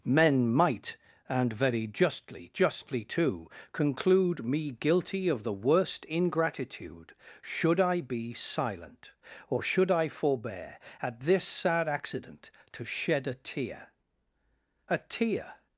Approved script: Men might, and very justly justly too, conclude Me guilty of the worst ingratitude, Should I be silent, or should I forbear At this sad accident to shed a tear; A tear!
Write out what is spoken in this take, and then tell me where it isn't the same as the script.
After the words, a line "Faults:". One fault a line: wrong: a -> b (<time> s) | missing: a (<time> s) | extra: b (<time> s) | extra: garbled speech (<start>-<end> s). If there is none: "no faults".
Men might, and very justly justly too, conclude Me guilty of the worst ingratitude, Should I be silent, or should I forbear At this sad accident to shed a tear; A tear!
Faults:
no faults